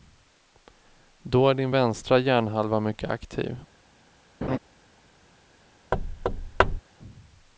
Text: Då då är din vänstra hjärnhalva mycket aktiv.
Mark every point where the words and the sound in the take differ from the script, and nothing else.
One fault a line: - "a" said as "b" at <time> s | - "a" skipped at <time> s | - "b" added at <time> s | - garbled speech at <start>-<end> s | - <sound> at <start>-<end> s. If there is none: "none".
- "då" skipped at 1.5 s
- laugh at 4.4-4.6 s
- thud at 5.9-6.8 s